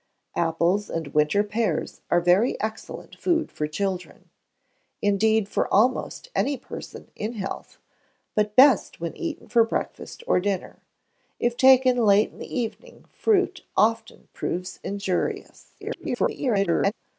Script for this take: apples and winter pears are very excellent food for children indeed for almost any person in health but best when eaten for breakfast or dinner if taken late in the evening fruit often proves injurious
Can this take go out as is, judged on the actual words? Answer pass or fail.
fail